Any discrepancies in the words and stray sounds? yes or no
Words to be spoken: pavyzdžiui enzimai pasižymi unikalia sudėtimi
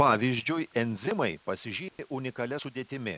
yes